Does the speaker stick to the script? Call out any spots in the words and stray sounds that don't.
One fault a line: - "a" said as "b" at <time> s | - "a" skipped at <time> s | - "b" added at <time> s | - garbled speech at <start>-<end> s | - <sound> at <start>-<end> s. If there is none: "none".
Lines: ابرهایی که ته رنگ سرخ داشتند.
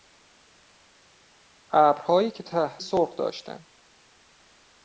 - "رنگ" skipped at 2.8 s